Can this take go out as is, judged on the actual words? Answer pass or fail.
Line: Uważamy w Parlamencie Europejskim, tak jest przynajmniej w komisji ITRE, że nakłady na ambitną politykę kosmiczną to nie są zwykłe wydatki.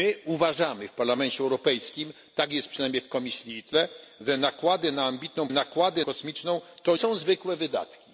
fail